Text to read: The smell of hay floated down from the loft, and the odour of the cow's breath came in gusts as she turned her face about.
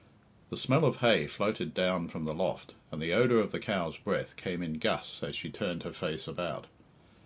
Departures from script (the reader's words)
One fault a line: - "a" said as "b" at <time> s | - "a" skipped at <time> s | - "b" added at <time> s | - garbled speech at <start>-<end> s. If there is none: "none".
none